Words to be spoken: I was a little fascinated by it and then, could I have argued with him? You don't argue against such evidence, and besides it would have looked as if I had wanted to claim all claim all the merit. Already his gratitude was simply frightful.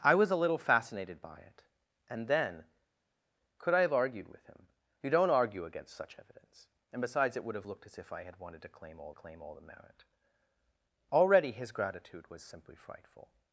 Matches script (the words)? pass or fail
pass